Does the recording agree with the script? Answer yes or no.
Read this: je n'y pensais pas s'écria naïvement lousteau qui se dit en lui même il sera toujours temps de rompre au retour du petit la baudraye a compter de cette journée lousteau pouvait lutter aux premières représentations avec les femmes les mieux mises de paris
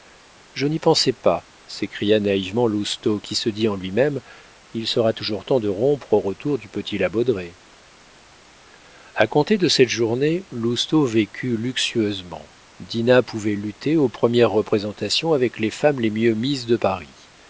no